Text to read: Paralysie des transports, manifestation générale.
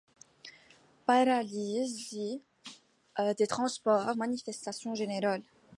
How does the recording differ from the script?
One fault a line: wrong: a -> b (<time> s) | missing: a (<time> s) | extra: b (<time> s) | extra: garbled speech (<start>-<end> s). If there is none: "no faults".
no faults